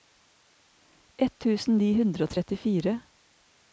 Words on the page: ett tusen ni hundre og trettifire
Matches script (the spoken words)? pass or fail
pass